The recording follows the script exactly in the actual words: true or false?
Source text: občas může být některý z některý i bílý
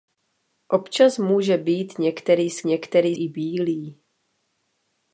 true